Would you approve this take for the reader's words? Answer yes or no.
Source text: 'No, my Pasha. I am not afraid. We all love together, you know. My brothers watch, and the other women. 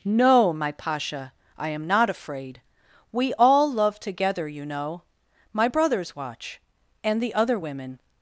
yes